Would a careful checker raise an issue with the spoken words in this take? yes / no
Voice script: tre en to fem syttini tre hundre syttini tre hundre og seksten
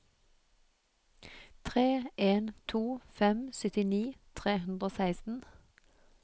yes